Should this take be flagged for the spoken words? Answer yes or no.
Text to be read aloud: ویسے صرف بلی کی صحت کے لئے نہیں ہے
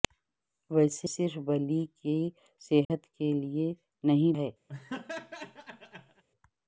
no